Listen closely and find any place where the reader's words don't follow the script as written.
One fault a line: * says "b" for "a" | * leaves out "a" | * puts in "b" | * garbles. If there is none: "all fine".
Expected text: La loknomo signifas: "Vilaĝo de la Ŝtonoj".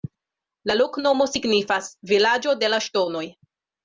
all fine